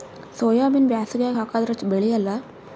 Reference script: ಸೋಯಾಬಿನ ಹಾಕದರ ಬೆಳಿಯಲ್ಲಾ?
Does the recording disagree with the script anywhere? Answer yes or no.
yes